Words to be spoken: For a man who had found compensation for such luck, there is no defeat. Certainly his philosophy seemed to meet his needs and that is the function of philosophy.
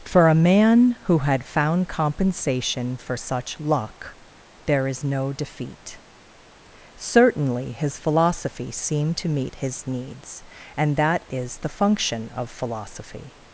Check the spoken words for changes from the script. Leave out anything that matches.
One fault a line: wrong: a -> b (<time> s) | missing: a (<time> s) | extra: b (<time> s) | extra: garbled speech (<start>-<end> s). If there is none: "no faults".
no faults